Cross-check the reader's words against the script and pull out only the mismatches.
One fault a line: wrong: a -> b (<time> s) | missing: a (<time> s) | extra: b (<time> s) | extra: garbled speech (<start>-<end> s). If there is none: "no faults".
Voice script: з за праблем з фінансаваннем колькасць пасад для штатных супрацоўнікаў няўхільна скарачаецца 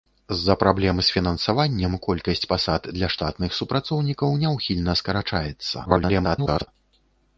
extra: garbled speech (5.8-6.7 s)